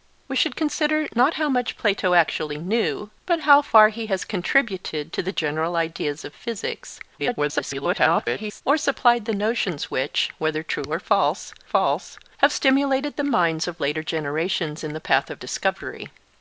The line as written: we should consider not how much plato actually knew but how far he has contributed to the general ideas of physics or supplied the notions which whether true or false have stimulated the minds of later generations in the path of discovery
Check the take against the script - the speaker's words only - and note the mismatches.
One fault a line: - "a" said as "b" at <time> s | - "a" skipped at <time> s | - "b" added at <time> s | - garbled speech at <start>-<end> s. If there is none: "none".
- garbled speech at 7.2-8.6 s
- "false" added at 11.6 s